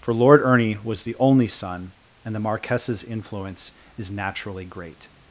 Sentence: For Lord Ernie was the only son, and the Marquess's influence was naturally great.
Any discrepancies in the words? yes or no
yes